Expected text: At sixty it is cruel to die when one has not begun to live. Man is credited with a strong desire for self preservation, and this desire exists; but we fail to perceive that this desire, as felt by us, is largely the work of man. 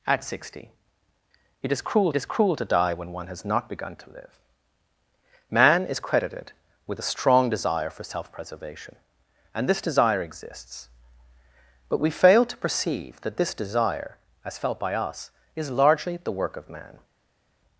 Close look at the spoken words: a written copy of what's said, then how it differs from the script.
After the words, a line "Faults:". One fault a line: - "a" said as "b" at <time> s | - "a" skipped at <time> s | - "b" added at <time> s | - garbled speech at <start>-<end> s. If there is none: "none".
At sixty it is cruel is cruel to die when one has not begun to live. Man is credited with a strong desire for self preservation, and this desire exists; but we fail to perceive that this desire, as felt by us, is largely the work of man.
Faults:
- "is cruel" added at 2.2 s